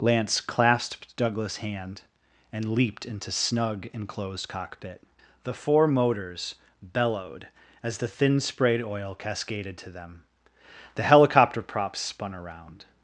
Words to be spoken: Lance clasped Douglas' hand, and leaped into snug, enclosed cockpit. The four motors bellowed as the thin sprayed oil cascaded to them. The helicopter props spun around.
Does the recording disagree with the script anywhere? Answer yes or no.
no